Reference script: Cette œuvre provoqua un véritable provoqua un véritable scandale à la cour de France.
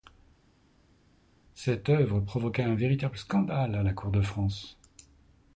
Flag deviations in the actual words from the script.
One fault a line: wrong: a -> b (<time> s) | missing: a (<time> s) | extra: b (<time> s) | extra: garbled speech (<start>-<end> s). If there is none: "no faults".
missing: provoqua un véritable (3.2 s)